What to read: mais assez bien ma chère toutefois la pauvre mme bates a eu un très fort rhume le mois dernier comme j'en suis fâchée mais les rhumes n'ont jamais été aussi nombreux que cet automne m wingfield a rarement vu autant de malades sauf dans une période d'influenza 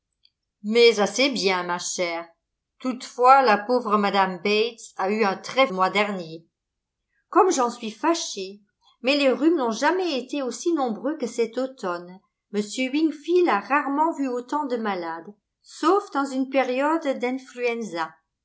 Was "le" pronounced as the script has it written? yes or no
no